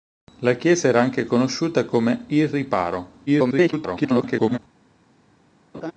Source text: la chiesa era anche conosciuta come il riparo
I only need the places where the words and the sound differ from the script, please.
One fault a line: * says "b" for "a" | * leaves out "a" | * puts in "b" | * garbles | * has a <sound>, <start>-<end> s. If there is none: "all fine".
* garbles
* has a laugh, 5.7-5.9 s